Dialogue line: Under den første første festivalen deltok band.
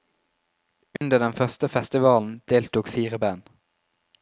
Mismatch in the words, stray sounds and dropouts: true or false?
true